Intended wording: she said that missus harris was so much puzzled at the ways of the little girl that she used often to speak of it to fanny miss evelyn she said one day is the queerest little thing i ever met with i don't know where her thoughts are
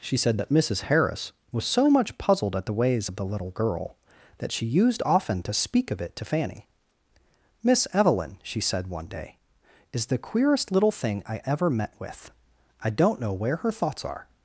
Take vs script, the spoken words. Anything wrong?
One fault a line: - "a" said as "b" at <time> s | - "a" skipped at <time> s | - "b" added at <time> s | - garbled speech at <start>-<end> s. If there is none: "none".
none